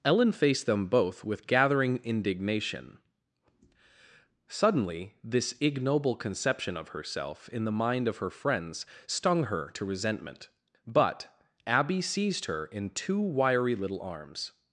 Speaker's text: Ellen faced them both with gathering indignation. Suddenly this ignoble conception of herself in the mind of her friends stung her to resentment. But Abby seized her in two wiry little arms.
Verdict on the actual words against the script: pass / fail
pass